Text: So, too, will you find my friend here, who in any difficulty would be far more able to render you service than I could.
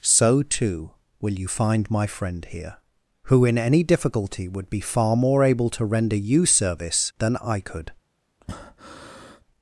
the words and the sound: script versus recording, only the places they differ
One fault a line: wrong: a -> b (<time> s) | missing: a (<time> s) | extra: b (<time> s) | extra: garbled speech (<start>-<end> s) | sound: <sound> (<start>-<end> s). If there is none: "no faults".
sound: breath (8.4-9.4 s)